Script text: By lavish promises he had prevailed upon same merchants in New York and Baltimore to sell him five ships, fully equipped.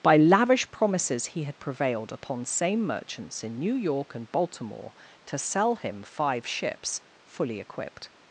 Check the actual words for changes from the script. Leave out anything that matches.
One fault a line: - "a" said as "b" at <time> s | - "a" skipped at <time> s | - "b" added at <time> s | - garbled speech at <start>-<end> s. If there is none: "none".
none